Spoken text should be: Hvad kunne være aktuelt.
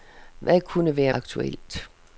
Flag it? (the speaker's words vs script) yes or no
no